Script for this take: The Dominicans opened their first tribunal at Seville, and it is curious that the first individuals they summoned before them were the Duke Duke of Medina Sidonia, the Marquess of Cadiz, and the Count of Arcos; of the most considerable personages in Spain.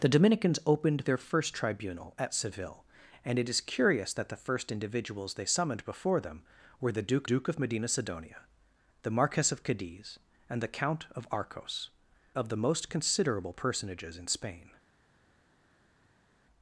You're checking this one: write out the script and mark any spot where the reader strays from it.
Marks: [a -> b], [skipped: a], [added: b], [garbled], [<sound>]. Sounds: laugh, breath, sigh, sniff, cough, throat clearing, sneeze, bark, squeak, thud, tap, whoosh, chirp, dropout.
The Dominicans opened their first tribunal at Seville, and it is curious that the first individuals they summoned before them were the Duke Duke of Medina Sidonia, the Marquess of Cadiz, and the Count of Arcos; of the most considerable personages in Spain.